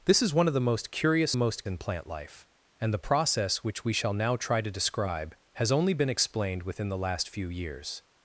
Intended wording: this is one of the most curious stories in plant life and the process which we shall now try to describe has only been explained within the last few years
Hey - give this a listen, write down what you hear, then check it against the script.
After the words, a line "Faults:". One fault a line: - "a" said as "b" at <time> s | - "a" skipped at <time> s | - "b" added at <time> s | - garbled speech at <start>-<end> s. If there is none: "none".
this is one of the most curious most in plant life and the process which we shall now try to describe has only been explained within the last few years
Faults:
- "stories" said as "most" at 1.3 s